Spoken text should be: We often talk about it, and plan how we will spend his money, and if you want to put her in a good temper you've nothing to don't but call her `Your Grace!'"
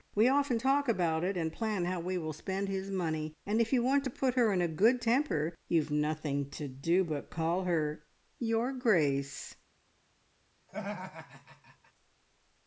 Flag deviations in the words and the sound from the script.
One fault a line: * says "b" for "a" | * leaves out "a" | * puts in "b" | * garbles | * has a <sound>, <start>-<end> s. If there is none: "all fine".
* says "do" for "don't"
* has a laugh, 10.7-11.9 s